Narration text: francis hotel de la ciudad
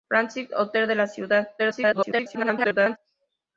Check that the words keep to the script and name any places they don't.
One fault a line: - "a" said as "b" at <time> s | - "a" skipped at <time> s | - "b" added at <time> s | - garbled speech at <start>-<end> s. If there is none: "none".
- garbled speech at 1.6-3.0 s